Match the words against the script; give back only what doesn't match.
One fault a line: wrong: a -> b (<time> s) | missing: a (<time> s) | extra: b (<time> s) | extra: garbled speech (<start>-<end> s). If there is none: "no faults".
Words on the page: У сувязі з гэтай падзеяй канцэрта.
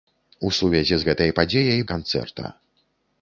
no faults